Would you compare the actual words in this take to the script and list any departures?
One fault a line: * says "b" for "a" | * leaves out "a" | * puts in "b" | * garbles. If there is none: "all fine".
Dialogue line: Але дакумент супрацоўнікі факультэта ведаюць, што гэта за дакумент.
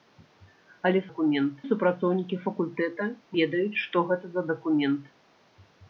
all fine